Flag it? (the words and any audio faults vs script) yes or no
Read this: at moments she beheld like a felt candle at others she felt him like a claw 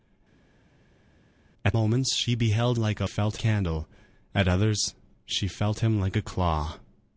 no